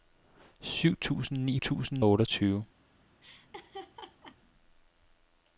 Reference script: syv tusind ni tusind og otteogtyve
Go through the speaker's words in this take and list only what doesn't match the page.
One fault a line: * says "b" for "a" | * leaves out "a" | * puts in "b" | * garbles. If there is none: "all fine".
all fine